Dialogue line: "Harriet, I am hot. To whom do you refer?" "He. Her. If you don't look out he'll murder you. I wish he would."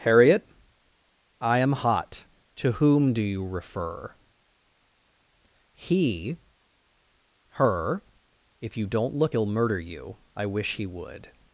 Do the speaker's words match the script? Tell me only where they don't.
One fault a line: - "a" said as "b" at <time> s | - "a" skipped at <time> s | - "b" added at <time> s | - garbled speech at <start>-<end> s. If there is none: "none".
- "out" skipped at 9.3 s